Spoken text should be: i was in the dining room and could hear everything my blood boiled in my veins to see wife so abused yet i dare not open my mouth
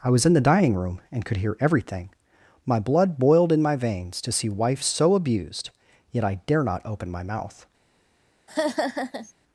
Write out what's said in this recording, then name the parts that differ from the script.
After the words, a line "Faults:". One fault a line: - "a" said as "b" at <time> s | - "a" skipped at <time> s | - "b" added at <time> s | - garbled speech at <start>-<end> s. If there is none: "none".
i was in the dining room and could hear everything my blood boiled in my veins to see wife so abused yet i dare not open my mouth
Faults:
none